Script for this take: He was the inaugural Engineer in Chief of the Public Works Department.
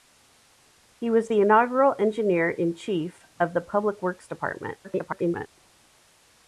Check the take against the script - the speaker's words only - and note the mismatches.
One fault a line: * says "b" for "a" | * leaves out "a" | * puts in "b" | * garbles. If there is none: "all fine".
* garbles